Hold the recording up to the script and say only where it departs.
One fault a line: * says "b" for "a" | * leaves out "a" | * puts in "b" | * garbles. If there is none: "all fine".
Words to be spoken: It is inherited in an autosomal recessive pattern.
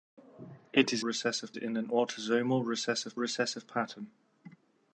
* says "recessive" for "inherited"
* puts in "recessive"